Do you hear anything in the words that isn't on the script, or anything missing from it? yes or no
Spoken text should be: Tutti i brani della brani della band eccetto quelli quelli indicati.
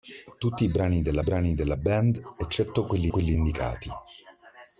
no